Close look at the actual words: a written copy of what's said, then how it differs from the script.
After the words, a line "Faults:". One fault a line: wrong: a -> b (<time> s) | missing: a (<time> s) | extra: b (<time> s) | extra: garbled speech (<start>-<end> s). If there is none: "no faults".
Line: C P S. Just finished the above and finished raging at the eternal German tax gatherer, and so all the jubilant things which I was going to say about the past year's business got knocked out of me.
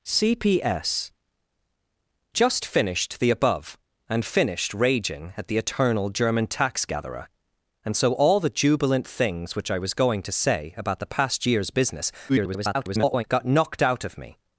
C P S. Just finished the above and finished raging at the eternal German tax gatherer, and so all the jubilant things which I was going to say about the past year's business [garbled] got knocked out of me.
Faults:
extra: garbled speech (12.3-13.2 s)